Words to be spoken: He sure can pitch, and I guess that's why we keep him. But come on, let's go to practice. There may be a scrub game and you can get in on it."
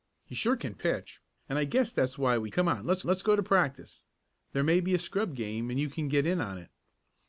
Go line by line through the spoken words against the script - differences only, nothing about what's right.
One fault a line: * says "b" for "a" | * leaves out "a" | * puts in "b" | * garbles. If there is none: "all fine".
* leaves out "keep him But"
* puts in "let's"